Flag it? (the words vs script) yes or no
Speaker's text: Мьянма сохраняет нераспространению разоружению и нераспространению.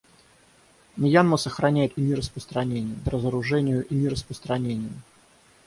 no